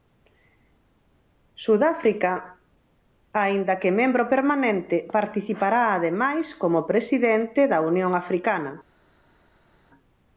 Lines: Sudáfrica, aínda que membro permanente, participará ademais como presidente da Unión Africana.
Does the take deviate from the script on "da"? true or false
false